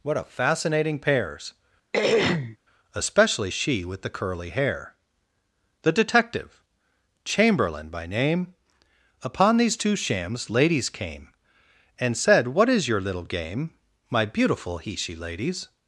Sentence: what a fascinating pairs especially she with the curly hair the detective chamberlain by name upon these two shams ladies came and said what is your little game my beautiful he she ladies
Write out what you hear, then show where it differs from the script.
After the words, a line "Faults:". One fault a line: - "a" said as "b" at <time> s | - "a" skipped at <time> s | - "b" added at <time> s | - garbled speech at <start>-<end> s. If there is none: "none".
what a fascinating pairs especially she with the curly hair the detective chamberlain by name upon these two shams ladies came and said what is your little game my beautiful he she ladies
Faults:
none